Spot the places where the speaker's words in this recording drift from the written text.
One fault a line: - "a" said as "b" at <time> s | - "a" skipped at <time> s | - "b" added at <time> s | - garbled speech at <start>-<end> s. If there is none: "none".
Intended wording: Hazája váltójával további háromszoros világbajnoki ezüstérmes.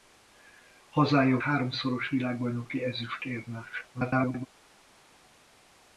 - "váltójával további" skipped at 1.4 s
- garbled speech at 3.9-4.5 s